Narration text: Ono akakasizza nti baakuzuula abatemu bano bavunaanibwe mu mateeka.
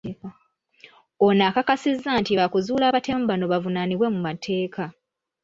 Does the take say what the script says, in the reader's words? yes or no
yes